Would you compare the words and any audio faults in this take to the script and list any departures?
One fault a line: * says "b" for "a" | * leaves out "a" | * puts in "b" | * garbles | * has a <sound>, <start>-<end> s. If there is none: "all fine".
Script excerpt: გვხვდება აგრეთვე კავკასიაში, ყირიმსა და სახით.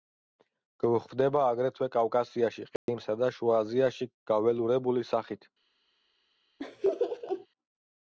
* has a dropout, 2.8-2.9 s
* puts in "შუა აზიაში გაველურებული"
* has a laugh, 6.6-7.5 s